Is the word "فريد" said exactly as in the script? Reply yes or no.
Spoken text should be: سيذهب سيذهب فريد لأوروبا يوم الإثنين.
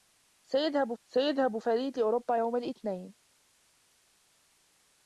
yes